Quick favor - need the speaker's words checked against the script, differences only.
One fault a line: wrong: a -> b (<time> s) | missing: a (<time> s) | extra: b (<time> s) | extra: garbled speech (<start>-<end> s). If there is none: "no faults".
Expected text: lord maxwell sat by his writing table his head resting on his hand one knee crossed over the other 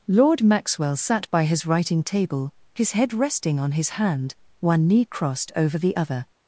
no faults